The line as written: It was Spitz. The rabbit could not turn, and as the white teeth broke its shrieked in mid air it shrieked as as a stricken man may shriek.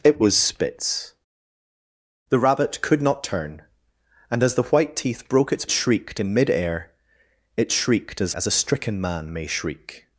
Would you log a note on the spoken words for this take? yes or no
no